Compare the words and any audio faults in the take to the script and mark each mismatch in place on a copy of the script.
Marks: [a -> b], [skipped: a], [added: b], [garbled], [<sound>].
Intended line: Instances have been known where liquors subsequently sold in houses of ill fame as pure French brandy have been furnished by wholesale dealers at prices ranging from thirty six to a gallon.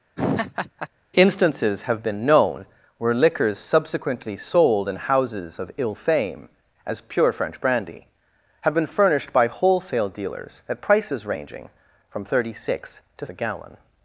[laugh] Instances have been known where liquors subsequently sold in houses of ill fame as pure French brandy have been furnished by wholesale dealers at prices ranging from thirty six to a gallon.